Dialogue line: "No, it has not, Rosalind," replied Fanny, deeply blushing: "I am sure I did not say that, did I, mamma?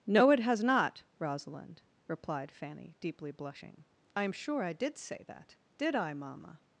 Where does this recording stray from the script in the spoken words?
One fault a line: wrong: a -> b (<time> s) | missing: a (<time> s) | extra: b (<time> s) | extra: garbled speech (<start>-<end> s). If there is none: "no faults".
missing: not (5.0 s)